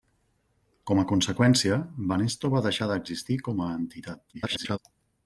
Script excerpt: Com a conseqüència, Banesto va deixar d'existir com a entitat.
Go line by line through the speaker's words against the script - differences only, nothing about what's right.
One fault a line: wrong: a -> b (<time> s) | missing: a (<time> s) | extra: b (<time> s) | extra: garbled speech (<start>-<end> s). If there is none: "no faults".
extra: garbled speech (4.3-4.8 s)